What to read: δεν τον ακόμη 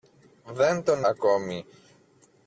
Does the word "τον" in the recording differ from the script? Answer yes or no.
no